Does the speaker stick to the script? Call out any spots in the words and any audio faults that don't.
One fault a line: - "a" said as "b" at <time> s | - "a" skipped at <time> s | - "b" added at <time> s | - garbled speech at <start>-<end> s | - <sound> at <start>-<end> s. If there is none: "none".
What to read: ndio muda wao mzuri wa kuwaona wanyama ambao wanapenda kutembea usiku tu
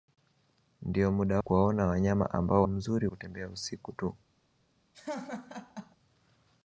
- "wao mzuri wa" skipped at 1.4 s
- "wanapenda" said as "mzuri" at 2.6 s
- laugh at 4.9-6.0 s